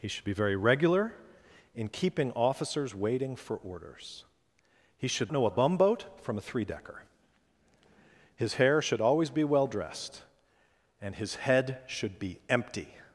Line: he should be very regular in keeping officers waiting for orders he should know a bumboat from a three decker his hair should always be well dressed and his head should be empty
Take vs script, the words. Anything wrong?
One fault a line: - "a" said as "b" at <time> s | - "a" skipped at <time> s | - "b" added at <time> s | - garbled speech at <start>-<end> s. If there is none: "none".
none